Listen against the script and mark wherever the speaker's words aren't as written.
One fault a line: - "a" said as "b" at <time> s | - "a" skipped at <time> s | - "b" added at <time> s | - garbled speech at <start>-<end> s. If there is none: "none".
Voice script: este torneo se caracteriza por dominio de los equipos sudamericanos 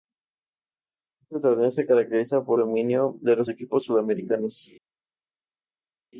none